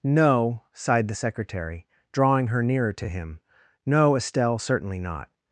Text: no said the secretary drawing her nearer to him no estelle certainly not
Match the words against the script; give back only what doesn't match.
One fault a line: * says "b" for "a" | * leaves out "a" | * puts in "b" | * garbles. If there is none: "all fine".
* says "sighed" for "said"